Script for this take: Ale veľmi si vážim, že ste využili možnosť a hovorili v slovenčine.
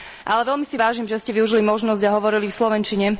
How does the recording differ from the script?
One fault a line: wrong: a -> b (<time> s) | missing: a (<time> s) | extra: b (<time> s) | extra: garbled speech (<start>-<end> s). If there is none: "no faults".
no faults